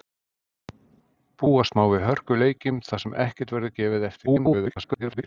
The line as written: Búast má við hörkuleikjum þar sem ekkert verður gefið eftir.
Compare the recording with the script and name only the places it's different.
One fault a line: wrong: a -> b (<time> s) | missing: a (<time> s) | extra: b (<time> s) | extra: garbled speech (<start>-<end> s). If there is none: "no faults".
extra: garbled speech (4.3-5.2 s)